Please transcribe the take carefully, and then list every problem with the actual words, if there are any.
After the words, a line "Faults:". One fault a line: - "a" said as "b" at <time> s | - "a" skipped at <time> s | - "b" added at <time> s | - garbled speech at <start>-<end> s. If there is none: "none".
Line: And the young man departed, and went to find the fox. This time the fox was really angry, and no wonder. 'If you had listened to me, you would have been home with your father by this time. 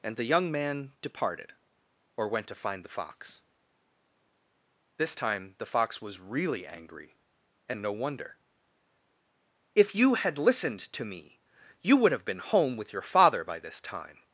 And the young man departed, or went to find the fox. This time the fox was really angry, and no wonder. 'If you had listened to me, you would have been home with your father by this time.
Faults:
- "and" said as "or" at 2.2 s